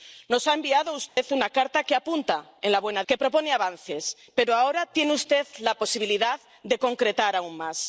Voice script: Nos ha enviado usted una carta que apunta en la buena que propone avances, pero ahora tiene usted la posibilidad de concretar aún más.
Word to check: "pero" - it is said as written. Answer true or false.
true